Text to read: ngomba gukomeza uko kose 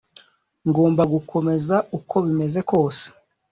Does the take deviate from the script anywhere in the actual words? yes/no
yes